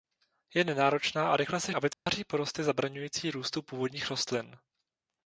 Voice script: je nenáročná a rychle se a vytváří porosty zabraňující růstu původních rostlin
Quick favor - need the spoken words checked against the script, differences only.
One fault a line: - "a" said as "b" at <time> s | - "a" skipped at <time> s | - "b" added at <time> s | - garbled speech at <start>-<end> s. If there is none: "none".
none